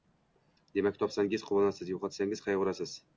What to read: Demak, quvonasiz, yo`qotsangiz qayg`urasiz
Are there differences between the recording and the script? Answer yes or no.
yes